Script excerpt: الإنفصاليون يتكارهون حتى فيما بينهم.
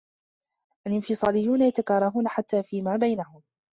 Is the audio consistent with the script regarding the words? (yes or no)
yes